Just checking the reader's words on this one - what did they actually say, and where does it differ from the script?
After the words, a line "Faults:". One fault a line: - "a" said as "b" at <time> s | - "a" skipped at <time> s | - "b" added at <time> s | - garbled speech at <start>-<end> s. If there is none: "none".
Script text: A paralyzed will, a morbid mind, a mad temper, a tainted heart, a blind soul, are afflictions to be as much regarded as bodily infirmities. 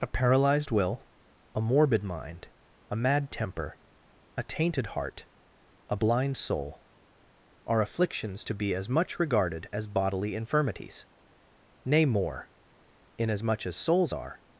A paralyzed will, a morbid mind, a mad temper, a tainted heart, a blind soul, are afflictions to be as much regarded as bodily infirmities. Nay, more, inasmuch as souls are
Faults:
- "Nay more inasmuch as souls are" added at 11.8 s